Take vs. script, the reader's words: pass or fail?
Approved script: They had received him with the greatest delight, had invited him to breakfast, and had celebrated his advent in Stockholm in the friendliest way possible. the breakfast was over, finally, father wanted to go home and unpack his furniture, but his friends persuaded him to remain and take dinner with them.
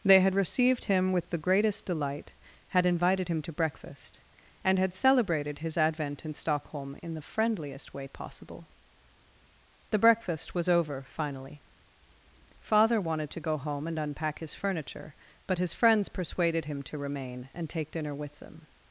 pass